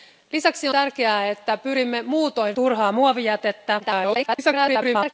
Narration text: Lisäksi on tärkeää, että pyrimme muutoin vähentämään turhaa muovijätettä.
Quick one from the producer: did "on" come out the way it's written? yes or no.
no